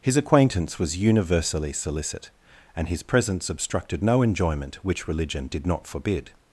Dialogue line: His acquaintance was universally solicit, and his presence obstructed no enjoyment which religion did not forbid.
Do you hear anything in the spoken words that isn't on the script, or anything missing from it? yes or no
no